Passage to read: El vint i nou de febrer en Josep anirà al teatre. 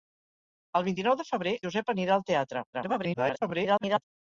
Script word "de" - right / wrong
right